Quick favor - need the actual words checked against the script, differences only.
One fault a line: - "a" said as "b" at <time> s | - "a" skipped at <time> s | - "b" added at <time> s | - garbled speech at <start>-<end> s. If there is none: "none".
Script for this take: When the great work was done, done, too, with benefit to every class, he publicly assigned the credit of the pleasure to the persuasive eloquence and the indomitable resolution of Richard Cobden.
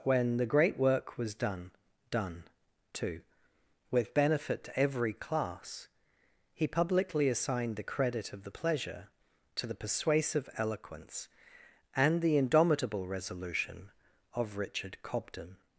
none